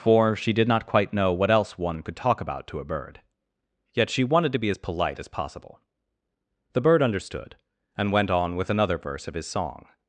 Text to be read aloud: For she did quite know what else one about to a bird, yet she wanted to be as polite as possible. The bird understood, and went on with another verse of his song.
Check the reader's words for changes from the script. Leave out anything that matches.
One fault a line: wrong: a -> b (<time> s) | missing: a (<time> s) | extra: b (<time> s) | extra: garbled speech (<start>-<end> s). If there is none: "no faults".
extra: not (0.7 s)
extra: could talk (2.0 s)